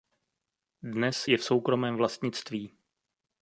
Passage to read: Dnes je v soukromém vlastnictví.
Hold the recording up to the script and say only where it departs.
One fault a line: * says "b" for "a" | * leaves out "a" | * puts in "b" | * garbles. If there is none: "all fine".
all fine